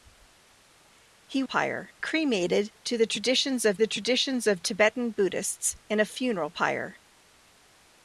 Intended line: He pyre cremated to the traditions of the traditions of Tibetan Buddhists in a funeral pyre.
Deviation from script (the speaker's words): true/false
false